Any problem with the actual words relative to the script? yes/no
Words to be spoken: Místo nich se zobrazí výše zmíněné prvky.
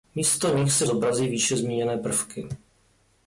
no